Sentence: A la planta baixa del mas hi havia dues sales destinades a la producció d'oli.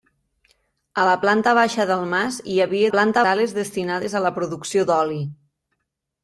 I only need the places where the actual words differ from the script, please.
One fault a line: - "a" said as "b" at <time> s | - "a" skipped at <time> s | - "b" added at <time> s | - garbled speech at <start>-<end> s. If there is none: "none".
- "dues" said as "planta" at 3.0 s